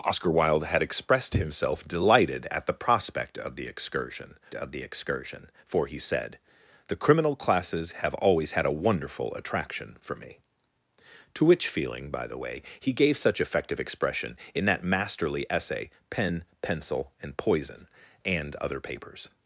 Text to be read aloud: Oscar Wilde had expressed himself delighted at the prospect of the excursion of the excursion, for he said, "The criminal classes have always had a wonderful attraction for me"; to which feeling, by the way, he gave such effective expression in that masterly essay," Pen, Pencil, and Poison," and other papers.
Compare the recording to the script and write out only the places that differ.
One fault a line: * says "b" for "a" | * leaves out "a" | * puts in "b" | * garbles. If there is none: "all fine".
all fine